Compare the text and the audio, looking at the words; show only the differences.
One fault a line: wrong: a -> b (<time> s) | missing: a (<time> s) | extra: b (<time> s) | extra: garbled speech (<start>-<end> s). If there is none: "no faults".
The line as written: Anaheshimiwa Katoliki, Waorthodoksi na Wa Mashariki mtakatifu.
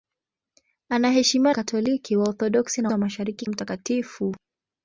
no faults